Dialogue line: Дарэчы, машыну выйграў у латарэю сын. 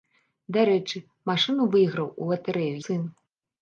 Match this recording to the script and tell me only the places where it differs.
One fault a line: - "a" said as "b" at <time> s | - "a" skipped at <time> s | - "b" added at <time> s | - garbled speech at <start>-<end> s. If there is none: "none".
none